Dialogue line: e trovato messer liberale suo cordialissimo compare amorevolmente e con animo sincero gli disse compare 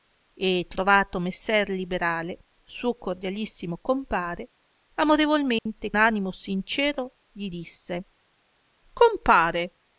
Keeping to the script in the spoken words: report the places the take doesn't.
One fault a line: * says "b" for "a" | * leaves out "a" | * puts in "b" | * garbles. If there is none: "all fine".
* leaves out "con"